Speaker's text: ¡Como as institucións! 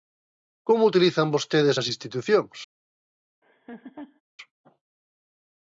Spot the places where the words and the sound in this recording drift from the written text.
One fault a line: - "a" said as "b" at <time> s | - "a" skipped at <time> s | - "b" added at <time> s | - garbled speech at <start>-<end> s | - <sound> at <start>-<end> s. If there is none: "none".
- "utilizan vostedes" added at 0.9 s
- laugh at 3.4-4.2 s